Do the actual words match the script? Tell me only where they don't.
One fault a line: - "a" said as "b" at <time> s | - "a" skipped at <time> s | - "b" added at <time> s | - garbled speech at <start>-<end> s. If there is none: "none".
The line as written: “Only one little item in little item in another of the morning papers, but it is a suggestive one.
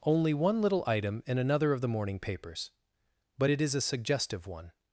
- "little item in" skipped at 1.4 s